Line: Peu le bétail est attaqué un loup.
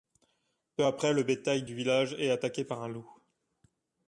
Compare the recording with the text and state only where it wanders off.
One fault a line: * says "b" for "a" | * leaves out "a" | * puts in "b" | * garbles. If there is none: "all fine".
* puts in "après"
* puts in "du village"
* puts in "par"